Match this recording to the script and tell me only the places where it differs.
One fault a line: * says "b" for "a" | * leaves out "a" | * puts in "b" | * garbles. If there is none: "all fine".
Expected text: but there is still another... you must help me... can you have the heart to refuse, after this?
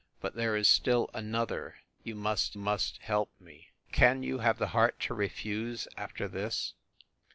* puts in "must"